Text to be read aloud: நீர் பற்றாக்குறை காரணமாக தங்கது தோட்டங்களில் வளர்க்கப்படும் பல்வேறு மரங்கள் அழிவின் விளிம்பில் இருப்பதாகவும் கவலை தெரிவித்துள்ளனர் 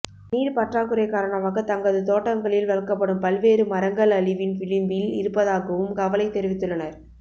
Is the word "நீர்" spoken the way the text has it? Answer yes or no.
yes